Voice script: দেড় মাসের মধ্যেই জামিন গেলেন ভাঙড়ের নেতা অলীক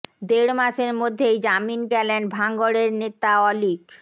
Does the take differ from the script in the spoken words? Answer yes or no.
no